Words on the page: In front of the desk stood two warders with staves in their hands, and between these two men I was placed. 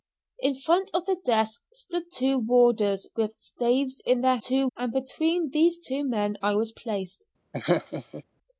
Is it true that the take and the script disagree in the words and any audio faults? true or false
true